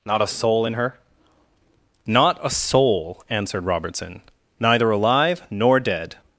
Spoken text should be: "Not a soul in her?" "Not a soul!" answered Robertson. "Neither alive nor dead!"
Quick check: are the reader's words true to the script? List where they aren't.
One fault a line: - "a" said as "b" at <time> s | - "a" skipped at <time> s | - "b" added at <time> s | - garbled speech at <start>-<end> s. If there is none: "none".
none